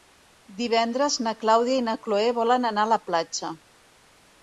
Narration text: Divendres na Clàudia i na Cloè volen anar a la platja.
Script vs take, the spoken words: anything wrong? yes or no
no